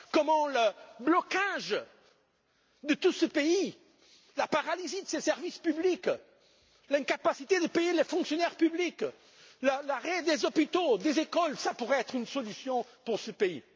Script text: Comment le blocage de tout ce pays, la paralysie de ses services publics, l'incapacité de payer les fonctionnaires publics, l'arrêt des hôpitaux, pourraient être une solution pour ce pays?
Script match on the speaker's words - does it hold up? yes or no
no